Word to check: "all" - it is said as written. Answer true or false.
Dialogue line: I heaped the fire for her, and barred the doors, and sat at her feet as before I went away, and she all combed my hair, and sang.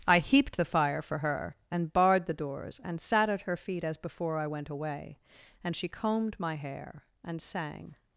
false